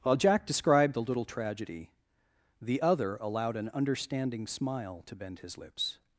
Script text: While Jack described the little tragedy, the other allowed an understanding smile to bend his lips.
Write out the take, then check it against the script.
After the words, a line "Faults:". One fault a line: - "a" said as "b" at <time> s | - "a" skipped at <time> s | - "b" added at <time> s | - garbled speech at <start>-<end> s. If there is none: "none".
While Jack described the little tragedy, the other allowed an understanding smile to bend his lips.
Faults:
none